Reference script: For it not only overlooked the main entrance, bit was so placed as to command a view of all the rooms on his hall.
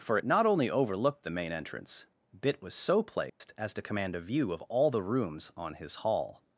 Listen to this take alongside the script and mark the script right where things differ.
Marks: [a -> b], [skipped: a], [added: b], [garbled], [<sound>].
For it not only overlooked the main entrance, bit was so placed [dropout] as to command a view of all the rooms on his hall.